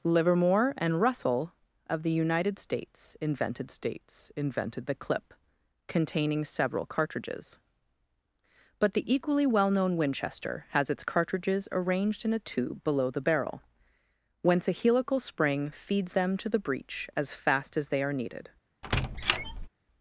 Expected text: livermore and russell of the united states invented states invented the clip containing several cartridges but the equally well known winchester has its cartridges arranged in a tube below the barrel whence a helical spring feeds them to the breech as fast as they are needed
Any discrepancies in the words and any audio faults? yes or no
yes